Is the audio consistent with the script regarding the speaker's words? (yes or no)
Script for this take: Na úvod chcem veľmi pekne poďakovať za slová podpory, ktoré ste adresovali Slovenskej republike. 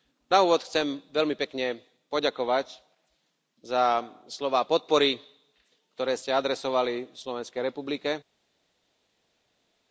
yes